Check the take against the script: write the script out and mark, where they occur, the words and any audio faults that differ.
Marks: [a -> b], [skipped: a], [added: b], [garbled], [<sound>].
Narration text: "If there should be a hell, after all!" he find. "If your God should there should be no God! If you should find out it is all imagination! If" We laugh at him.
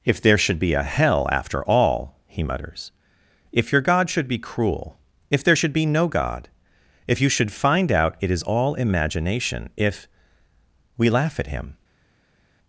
"If there should be a hell, after all!" he [find. -> mutters] "If your God should [added: be cruel If] there should be no God! If you should find out it is all imagination! If" We laugh at him.